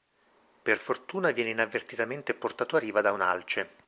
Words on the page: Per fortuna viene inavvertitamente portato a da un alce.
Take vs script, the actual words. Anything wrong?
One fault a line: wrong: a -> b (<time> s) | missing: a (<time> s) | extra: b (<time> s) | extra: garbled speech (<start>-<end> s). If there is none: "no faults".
extra: riva (2.8 s)